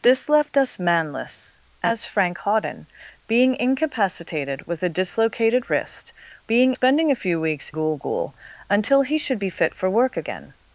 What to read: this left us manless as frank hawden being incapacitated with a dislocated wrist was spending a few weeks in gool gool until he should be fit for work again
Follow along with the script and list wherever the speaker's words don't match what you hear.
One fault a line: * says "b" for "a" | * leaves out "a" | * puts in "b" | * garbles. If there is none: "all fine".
* says "being" for "was"
* leaves out "in"